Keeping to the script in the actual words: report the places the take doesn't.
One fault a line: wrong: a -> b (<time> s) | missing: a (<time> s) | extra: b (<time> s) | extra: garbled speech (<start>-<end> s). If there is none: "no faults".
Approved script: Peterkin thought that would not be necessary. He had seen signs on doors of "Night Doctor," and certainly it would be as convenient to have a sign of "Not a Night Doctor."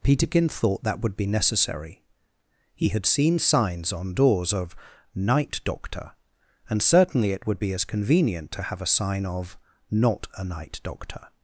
missing: not (1.2 s)